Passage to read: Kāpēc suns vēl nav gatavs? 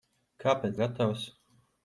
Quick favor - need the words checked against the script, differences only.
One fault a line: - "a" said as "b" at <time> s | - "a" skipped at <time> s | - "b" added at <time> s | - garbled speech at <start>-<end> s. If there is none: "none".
- "suns vēl nav" skipped at 0.8 s